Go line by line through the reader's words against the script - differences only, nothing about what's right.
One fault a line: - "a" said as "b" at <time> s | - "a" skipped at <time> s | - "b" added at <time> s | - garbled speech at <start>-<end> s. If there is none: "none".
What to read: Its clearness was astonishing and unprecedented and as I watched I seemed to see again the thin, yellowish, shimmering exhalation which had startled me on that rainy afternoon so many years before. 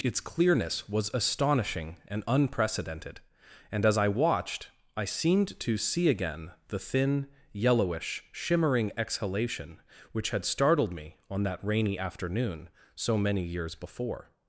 none